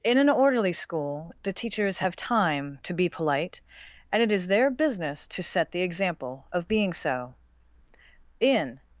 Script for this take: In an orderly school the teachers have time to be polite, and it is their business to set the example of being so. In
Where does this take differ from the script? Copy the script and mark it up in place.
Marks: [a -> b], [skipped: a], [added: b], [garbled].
In an orderly school the teachers have time to be polite, and it is their business to set the example of being so. In